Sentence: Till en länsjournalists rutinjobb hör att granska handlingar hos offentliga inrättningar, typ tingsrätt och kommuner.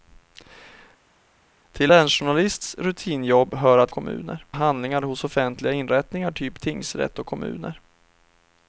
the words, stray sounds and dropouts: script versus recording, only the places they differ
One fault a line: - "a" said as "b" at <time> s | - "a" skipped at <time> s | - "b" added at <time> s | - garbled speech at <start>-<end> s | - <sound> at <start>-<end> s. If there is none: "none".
- "en" skipped at 1.9 s
- "granska" said as "kommuner" at 3.9 s